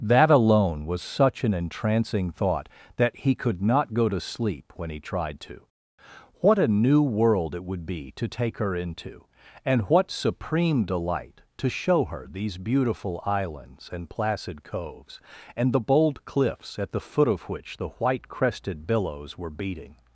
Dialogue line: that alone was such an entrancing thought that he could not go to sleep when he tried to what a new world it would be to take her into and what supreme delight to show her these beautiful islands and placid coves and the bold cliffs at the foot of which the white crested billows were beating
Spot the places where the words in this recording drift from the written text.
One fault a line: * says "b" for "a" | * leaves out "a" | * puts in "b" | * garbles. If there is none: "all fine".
all fine